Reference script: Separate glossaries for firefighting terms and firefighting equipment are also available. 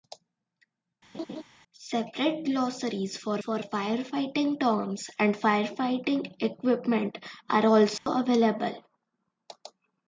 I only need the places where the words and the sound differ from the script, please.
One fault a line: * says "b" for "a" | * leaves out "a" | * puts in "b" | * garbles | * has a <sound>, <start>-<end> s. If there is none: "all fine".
* has a laugh, 1.1-1.4 s
* puts in "for"
* has a dropout, 8.0-8.1 s